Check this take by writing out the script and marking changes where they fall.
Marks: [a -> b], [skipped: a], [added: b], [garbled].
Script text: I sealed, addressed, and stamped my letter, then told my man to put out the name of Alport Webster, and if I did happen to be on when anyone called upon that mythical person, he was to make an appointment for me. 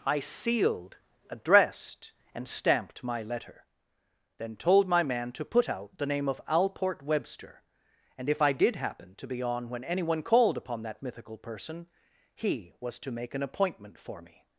I sealed, addressed, and stamped my letter, then told my man to put out the name of Alport Webster, and if I did happen to be on when anyone called upon that mythical person, he was to make an appointment for me.